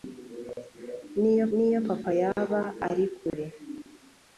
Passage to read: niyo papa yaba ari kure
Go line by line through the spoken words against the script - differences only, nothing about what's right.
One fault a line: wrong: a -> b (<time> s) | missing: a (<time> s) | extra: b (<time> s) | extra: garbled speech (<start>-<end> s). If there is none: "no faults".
extra: niyo (1.5 s)